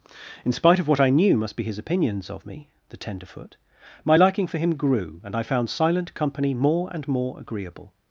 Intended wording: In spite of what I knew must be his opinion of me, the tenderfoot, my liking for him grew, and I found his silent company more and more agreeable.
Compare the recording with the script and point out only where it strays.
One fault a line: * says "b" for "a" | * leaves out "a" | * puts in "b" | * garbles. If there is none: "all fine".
* says "opinions" for "opinion"
* leaves out "his"